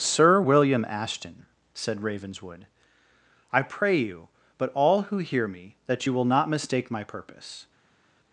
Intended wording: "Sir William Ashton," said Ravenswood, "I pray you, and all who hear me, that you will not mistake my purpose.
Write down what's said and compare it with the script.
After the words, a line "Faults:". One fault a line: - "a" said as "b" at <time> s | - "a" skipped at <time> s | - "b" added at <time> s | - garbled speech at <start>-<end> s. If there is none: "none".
"Sir William Ashton," said Ravenswood, "I pray you, but all who hear me, that you will not mistake my purpose.
Faults:
- "and" said as "but" at 4.6 s